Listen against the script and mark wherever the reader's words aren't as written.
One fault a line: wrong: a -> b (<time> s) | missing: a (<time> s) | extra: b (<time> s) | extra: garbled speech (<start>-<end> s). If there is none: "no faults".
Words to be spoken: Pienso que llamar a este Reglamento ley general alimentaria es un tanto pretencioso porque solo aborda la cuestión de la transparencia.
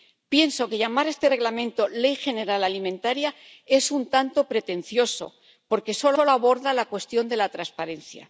extra: solo (6.2 s)